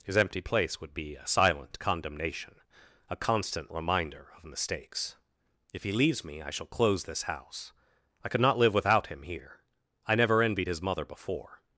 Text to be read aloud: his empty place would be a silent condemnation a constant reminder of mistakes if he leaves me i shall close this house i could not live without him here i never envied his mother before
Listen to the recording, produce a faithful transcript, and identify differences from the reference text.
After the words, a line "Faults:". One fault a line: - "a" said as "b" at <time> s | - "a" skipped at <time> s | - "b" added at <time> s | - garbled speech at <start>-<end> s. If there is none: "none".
his empty place would be a silent condemnation a constant reminder of mistakes if he leaves me i shall close this house i could not live without him here i never envied his mother before
Faults:
none